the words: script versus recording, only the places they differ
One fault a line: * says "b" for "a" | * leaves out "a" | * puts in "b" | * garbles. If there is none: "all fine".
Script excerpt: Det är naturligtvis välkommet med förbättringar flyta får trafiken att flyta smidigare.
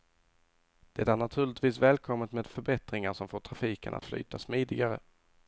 * says "som" for "flyta"